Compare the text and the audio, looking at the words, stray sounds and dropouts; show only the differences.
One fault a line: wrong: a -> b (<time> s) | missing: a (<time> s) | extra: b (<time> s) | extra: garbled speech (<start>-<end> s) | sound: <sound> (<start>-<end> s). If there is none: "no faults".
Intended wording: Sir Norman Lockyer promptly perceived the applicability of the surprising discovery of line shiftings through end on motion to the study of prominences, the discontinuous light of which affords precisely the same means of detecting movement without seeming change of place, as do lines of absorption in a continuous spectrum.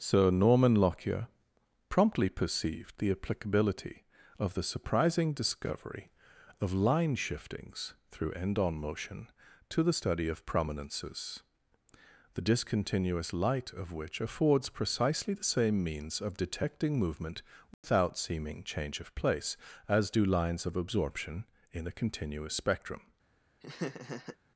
sound: dropout (17.7-17.8 s)
sound: laugh (23.6-24.4 s)